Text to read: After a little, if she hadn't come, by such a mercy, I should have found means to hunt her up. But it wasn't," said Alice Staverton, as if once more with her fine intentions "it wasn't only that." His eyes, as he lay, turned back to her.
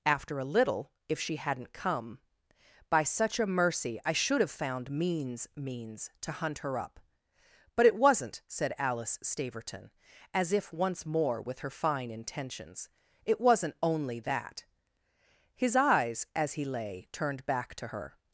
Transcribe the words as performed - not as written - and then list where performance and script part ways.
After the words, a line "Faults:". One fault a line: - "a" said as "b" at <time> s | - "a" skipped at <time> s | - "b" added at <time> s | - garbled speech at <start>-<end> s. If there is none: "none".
After a little, if she hadn't come, by such a mercy, I should have found means means to hunt her up. But it wasn't," said Alice Staverton, as if once more with her fine intentions "it wasn't only that." His eyes, as he lay, turned back to her.
Faults:
- "means" added at 5.6 s